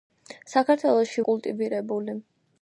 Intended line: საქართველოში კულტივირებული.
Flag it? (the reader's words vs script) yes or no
no